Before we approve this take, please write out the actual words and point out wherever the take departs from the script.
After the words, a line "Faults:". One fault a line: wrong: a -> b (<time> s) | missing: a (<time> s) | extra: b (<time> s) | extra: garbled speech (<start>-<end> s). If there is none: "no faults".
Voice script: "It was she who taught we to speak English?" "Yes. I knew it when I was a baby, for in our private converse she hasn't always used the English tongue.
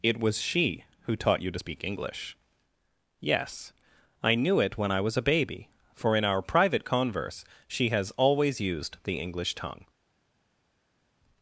"It was she who taught you to speak English?" "Yes. I knew it when I was a baby, for in our private converse she has always used the English tongue.
Faults:
wrong: we -> you (1.4 s)
wrong: hasn't -> has (7.9 s)